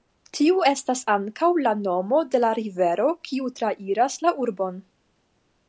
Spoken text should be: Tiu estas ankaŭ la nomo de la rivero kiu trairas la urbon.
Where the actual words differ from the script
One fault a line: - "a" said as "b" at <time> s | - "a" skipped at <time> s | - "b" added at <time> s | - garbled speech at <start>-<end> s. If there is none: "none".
none